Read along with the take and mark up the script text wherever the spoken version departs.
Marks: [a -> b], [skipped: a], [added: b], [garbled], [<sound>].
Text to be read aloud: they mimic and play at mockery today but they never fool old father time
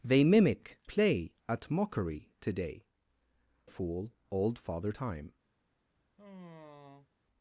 they mimic [skipped: and] play at mockery today [skipped: but they never] fool old father time [sigh]